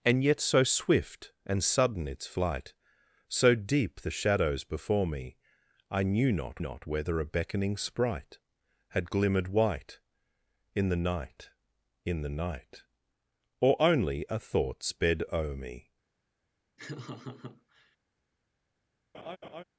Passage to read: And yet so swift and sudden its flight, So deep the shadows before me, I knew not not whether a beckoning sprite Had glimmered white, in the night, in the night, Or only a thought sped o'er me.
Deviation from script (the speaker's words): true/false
false